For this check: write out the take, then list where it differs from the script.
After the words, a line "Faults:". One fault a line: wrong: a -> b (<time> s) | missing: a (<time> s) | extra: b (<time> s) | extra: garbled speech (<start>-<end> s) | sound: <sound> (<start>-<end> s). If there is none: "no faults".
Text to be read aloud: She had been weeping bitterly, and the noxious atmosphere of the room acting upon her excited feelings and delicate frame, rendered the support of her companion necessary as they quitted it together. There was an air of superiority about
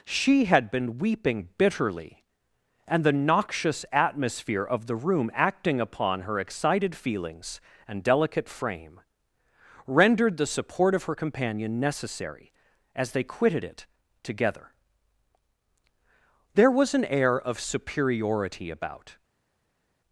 She had been weeping bitterly, and the noxious atmosphere of the room acting upon her excited feelings and delicate frame, rendered the support of her companion necessary as they quitted it together. There was an air of superiority about
Faults:
no faults